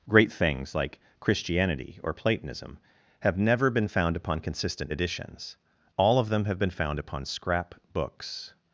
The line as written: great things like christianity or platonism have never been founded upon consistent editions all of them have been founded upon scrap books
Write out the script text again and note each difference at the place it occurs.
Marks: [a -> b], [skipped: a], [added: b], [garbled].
great things like christianity or platonism have never been [founded -> found] upon consistent editions all of them have been [founded -> found] upon scrap books